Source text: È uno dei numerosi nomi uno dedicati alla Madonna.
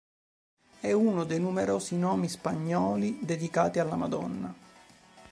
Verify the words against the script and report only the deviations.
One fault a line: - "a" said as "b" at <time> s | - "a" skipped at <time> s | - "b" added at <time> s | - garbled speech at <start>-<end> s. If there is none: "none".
- "uno" said as "spagnoli" at 2.3 s